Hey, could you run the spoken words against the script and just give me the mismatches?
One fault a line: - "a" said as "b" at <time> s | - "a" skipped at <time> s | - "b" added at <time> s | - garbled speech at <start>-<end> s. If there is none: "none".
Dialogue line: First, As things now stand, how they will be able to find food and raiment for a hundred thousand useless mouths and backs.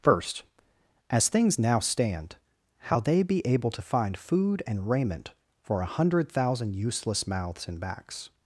- "will" skipped at 3.2 s